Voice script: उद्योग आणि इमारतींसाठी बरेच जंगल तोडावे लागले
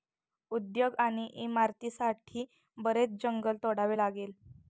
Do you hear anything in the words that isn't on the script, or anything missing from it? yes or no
no